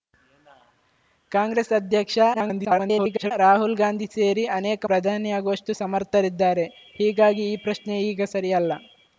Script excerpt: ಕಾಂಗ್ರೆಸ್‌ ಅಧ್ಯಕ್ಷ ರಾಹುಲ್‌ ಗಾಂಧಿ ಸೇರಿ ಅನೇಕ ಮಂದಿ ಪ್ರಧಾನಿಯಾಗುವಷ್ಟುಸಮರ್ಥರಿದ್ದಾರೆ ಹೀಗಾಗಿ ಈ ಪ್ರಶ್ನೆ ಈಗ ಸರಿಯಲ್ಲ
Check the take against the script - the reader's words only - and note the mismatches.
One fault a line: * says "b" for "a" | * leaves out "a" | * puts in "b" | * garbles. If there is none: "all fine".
* garbles
* leaves out "ಮಂದಿ"